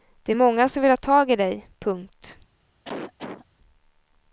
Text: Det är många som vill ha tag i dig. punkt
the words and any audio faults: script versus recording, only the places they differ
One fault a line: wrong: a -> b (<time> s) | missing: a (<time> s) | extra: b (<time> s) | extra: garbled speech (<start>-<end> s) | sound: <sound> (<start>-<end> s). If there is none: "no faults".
sound: cough (2.8-3.5 s)